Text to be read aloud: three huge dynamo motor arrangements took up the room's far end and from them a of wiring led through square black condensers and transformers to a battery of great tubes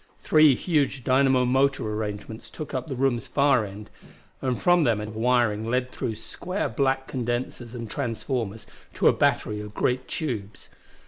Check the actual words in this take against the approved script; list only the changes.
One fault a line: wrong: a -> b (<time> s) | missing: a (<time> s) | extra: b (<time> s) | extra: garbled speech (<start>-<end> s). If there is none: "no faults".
no faults